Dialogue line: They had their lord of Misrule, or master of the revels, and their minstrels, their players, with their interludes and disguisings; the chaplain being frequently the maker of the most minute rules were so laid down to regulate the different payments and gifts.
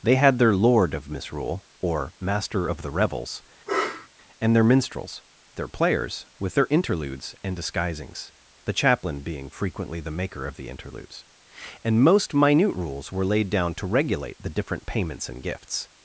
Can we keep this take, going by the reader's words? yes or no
no